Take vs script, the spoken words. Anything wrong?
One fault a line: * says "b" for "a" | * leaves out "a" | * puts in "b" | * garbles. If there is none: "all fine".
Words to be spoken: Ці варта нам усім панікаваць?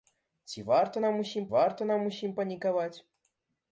* puts in "варта нам усім"